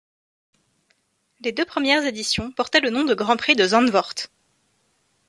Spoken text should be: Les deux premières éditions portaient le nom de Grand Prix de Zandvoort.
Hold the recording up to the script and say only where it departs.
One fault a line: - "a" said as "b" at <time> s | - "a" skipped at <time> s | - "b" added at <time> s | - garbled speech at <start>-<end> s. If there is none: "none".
none